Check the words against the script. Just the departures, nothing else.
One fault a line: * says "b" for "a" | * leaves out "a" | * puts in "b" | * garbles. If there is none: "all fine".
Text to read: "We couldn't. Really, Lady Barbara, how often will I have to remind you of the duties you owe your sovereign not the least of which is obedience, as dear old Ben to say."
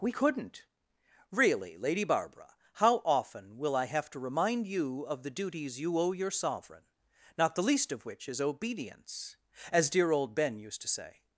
* puts in "used"